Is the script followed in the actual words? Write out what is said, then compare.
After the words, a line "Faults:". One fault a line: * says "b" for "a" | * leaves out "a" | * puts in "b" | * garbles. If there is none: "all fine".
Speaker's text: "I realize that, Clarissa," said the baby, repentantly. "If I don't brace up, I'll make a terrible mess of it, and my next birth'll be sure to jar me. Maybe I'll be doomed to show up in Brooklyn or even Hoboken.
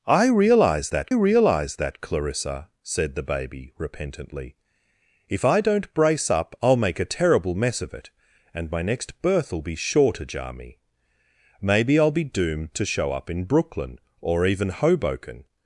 "I realize that realize that, Clarissa," said the baby, repentantly. "If I don't brace up, I'll make a terrible mess of it, and my next birth'll be sure to jar me. Maybe I'll be doomed to show up in Brooklyn or even Hoboken.
Faults:
* puts in "realize that"